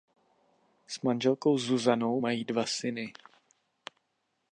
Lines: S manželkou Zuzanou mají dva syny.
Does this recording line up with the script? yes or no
yes